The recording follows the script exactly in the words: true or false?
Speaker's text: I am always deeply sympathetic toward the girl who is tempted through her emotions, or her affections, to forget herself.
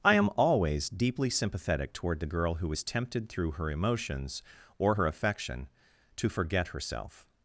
false